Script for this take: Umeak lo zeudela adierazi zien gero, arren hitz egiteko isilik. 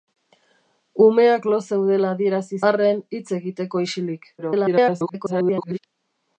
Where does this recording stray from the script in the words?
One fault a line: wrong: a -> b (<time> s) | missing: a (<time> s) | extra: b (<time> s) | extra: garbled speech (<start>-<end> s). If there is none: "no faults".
missing: zien gero (2.6 s)
extra: garbled speech (4.4-5.8 s)